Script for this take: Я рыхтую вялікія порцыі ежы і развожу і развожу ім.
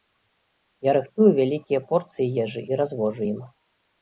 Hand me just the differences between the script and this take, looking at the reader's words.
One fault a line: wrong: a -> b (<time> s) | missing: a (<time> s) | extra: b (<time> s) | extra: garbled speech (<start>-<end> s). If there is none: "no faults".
missing: і развожу (3.2 s)